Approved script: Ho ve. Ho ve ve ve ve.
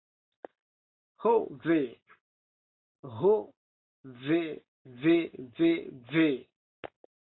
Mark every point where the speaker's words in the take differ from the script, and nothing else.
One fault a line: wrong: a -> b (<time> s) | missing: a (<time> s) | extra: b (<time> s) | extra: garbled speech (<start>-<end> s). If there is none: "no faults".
no faults